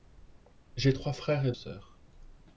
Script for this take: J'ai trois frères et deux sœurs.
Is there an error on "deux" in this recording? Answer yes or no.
yes